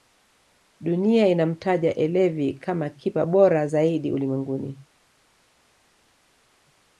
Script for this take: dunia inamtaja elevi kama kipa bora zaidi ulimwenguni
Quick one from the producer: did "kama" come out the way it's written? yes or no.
yes